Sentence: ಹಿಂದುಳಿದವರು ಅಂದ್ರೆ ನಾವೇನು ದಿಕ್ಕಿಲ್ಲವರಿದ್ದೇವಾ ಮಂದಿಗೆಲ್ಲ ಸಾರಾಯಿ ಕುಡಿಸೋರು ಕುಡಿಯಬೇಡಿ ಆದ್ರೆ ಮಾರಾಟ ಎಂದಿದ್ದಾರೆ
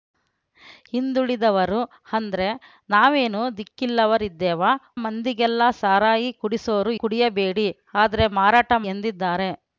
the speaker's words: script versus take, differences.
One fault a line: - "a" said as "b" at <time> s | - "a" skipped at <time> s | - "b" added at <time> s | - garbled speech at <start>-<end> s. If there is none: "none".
none